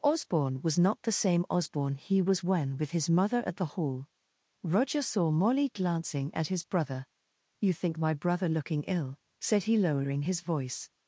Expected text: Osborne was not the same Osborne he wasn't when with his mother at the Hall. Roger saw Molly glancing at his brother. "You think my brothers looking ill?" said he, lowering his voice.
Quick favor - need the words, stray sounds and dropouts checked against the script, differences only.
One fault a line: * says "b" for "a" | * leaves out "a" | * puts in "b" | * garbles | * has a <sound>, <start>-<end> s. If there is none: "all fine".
* says "was" for "wasn't"
* says "brother" for "brothers"